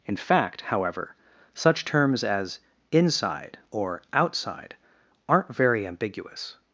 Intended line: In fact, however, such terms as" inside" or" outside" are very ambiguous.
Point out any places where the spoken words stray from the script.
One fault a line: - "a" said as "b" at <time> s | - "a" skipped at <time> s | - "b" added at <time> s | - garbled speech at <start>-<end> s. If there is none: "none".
- "are" said as "aren't" at 5.3 s